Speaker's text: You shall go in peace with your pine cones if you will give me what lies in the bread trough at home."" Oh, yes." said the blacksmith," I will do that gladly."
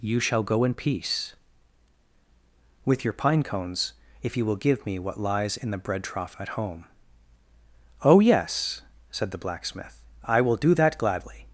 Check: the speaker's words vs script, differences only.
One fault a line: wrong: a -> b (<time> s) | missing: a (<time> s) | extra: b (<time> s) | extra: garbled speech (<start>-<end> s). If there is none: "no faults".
no faults